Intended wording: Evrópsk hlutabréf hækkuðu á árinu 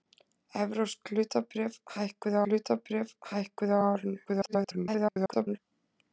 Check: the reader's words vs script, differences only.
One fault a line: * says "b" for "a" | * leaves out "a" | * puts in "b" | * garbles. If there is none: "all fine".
* puts in "hlutabréf hækkuðu"
* garbles